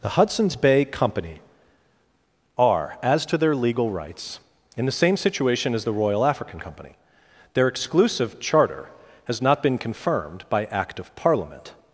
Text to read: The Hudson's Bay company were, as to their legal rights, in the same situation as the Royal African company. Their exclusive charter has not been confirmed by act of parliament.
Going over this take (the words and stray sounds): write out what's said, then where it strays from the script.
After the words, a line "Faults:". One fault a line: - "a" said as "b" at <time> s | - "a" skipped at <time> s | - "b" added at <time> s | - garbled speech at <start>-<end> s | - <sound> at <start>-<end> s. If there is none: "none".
The Hudson's Bay company are, as to their legal rights, in the same situation as the Royal African company. Their exclusive charter has not been confirmed by act of parliament.
Faults:
- "were" said as "are" at 2.6 s